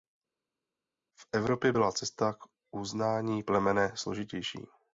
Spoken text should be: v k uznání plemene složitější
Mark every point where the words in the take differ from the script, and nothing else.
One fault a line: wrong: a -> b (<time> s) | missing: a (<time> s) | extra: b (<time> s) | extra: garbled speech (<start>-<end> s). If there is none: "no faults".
extra: evropě byla cesta (1.3 s)